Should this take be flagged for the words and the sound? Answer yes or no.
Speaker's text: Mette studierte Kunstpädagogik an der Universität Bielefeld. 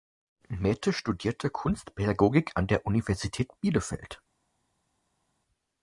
no